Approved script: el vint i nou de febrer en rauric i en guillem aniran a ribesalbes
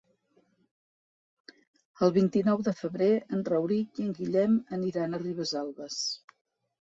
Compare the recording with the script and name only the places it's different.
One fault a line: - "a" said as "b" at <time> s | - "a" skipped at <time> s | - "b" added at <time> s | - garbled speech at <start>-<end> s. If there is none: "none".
none